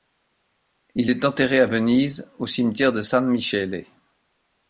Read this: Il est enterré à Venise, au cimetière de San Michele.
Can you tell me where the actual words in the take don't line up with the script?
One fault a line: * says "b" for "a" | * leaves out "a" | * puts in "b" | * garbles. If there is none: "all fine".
all fine